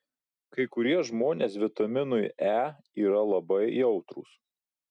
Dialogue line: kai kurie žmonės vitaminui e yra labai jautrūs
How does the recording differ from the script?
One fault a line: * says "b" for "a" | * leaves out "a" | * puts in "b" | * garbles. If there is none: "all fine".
all fine